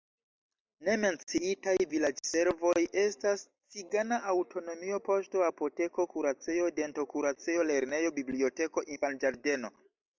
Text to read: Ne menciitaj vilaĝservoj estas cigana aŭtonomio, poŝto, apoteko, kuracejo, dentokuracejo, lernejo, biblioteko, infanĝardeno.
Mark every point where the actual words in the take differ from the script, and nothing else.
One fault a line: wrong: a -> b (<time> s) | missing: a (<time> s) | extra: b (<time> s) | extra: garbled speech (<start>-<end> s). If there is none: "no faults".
no faults